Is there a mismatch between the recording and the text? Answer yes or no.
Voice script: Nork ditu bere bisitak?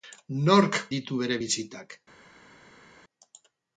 no